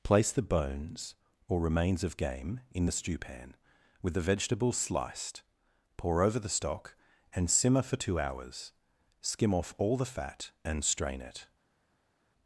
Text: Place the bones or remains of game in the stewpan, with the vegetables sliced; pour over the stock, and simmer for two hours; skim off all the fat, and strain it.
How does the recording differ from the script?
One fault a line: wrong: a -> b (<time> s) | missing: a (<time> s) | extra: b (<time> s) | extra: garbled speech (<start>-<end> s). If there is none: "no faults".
no faults